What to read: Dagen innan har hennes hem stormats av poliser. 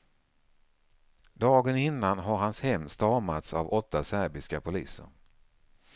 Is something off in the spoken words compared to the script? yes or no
yes